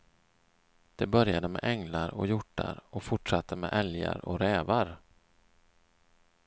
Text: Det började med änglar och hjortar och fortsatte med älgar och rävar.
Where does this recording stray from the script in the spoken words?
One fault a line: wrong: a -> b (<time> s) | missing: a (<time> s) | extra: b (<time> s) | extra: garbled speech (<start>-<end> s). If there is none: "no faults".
no faults